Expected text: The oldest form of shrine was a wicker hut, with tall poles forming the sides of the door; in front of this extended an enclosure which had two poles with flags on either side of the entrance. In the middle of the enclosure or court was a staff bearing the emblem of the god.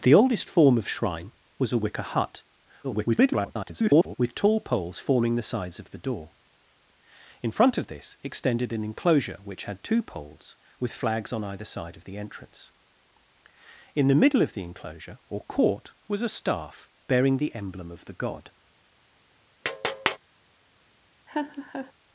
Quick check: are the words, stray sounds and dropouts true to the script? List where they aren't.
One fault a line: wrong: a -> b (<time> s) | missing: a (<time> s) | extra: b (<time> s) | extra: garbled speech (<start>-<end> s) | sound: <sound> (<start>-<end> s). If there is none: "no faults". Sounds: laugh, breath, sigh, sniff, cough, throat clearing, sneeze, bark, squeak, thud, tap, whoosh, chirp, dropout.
extra: garbled speech (2.8-4.1 s)
sound: tap (19.6-20.2 s)
sound: laugh (21.3-21.9 s)